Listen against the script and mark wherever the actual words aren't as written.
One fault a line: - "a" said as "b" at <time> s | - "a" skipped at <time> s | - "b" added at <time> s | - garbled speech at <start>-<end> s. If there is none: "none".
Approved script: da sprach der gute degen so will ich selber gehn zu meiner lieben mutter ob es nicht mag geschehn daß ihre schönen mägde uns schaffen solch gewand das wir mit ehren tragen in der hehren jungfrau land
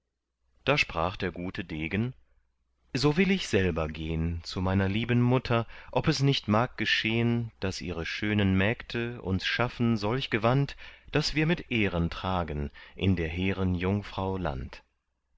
none